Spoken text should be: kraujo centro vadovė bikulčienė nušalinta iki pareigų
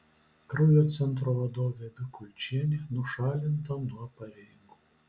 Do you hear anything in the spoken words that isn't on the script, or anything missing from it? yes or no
yes